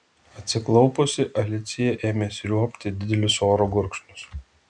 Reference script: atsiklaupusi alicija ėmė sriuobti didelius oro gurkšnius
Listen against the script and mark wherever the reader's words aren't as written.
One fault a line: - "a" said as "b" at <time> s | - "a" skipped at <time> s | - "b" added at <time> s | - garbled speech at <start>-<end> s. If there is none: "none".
none